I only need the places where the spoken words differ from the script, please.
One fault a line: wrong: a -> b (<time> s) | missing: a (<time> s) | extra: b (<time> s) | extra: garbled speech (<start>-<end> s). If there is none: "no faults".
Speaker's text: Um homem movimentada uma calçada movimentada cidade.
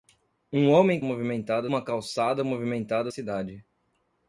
no faults